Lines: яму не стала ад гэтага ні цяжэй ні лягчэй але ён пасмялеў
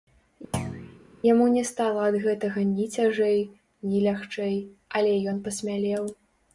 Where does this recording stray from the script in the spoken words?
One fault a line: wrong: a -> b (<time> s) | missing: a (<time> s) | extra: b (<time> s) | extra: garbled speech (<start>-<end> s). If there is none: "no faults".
no faults